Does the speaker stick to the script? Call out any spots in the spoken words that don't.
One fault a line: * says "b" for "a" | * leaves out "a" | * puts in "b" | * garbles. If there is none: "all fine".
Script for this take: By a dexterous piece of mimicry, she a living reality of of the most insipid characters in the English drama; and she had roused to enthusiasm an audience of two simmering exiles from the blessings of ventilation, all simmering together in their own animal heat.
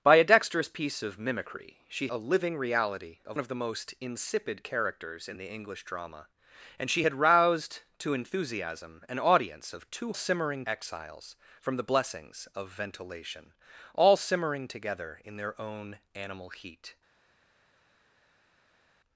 all fine